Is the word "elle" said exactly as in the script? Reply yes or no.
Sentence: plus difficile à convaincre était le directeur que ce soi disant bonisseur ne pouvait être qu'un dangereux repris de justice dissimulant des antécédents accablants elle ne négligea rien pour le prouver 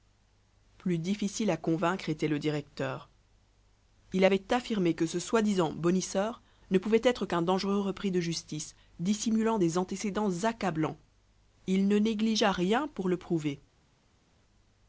no